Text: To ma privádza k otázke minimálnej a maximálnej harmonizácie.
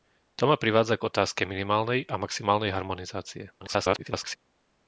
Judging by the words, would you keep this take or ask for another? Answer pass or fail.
fail